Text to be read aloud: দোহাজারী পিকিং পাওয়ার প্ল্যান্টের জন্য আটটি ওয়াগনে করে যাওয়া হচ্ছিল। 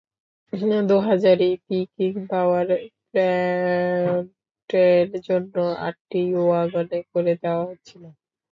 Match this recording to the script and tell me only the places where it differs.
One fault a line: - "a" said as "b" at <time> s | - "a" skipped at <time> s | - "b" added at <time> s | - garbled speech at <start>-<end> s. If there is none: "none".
none